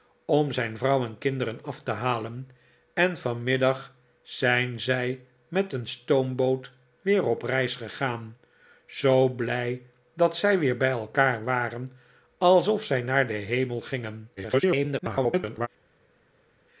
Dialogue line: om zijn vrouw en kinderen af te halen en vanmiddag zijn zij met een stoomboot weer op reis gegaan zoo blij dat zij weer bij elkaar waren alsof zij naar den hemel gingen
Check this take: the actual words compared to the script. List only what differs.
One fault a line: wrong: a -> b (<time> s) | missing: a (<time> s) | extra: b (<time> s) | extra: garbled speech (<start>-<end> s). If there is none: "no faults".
extra: garbled speech (14.4-15.7 s)